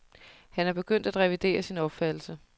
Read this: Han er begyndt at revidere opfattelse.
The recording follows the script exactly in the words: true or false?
false